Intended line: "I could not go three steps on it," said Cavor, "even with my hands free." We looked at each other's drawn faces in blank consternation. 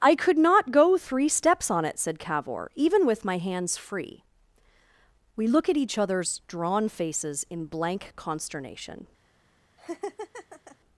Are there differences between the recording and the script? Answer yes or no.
yes